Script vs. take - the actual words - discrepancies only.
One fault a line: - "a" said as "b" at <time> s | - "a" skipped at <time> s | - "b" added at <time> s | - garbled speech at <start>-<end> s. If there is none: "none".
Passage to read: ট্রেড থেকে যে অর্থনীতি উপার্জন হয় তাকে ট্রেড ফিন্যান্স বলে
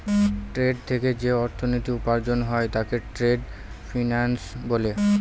none